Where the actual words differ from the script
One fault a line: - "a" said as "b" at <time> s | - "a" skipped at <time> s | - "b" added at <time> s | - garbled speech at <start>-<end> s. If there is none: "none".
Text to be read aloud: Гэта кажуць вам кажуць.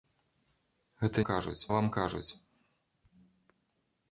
none